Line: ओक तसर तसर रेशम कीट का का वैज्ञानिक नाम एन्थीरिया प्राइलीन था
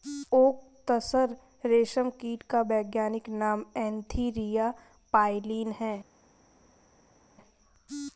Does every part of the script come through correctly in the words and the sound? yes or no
no